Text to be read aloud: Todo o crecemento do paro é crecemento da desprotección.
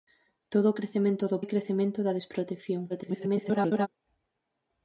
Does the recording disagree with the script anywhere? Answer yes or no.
yes